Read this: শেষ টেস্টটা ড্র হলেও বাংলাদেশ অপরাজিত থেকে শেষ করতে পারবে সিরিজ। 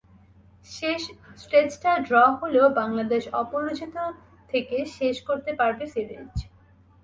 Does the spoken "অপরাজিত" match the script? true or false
true